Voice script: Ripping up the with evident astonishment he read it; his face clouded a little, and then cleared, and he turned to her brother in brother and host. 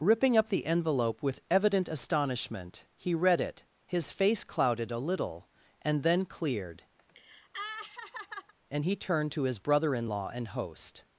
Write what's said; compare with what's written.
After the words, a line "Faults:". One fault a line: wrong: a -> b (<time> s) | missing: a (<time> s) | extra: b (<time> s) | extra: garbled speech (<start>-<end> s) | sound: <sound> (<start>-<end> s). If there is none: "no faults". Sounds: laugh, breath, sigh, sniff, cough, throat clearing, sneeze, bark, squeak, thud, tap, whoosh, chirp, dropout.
Ripping up the envelope with evident astonishment he read it; his face clouded a little, and then cleared, and he turned to his brother in law and host.
Faults:
extra: envelope (0.7 s)
sound: laugh (7.0-8.5 s)
wrong: her -> his (9.4 s)
wrong: brother -> law (10.1 s)